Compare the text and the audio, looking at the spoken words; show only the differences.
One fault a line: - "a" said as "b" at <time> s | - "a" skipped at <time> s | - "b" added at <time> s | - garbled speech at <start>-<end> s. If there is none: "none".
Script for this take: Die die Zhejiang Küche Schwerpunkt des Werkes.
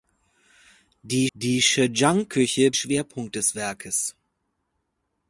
none